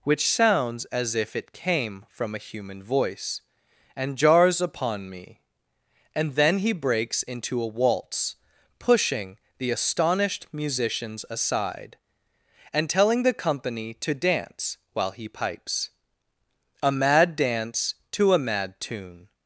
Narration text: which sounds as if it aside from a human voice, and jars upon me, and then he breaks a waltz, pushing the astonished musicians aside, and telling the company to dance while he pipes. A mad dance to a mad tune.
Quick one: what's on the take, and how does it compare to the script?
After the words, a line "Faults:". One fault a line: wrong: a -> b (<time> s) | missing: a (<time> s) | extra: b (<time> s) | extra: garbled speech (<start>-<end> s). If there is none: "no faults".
which sounds as if it came from a human voice, and jars upon me, and then he breaks into a waltz, pushing the astonished musicians aside, and telling the company to dance while he pipes. A mad dance to a mad tune.
Faults:
wrong: aside -> came (1.5 s)
extra: into (7.2 s)